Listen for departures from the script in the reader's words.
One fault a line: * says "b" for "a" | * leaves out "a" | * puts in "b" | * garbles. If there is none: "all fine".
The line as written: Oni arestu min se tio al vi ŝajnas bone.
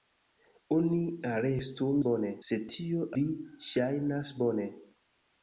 * says "bone" for "min"
* leaves out "al"